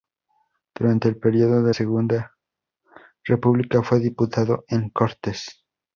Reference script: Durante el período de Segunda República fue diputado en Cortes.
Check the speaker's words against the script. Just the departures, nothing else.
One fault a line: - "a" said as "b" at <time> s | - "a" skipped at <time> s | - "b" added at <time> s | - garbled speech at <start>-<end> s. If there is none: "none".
none